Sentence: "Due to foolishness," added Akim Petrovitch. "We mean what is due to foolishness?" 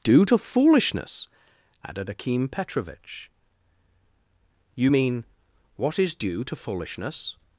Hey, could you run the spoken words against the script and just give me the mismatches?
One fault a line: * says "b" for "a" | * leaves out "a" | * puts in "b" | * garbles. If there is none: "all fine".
* says "You" for "We"